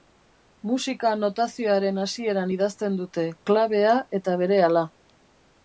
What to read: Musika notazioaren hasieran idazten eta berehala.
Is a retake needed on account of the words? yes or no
yes